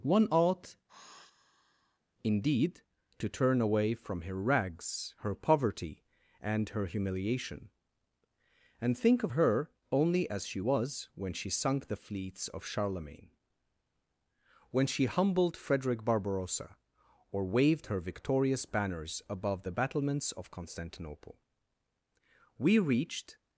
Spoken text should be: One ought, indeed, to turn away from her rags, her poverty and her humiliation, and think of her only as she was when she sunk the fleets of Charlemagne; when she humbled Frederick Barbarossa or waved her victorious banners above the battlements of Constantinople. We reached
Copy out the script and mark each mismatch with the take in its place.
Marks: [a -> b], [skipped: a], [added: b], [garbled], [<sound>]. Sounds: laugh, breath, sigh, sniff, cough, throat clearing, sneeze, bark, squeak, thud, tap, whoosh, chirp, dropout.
One ought, [sigh] indeed, to turn away from her rags, her poverty and her humiliation, and think of her only as she was when she sunk the fleets of Charlemagne; when she humbled Frederick Barbarossa or waved her victorious banners above the battlements of Constantinople. We reached